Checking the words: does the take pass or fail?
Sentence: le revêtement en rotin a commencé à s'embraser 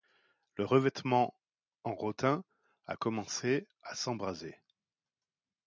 pass